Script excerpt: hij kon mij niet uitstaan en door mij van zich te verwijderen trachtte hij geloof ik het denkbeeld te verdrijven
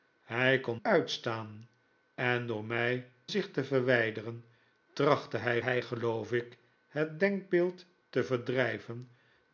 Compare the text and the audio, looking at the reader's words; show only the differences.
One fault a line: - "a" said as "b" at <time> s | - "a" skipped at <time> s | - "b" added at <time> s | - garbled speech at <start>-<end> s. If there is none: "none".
- "mij niet" skipped at 0.8 s
- "van" skipped at 3.1 s
- "hij" added at 5.6 s